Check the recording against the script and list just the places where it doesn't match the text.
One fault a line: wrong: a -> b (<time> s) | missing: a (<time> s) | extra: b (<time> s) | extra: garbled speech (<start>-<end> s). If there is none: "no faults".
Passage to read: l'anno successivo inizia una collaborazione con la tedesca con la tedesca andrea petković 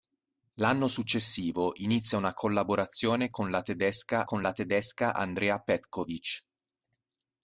no faults